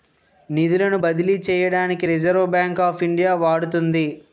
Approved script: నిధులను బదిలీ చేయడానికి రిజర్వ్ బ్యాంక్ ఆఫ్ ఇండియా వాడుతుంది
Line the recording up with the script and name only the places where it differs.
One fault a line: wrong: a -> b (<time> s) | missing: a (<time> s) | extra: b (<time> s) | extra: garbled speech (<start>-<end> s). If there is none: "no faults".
no faults